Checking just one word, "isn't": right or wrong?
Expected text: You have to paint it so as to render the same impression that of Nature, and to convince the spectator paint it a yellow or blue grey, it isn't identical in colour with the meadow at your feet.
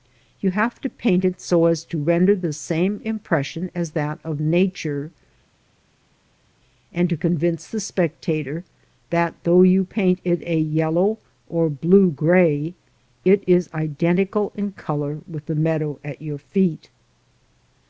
wrong